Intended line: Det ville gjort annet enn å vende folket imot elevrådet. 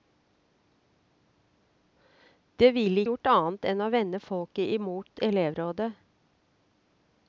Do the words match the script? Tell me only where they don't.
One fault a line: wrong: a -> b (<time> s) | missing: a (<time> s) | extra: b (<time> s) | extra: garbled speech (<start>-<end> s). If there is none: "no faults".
no faults